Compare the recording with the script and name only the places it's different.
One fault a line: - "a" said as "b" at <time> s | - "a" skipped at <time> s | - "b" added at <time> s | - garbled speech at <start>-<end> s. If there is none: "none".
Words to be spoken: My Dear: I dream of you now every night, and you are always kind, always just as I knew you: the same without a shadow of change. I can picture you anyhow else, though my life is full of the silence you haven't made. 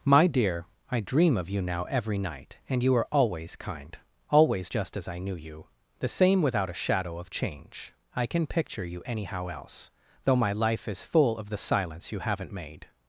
none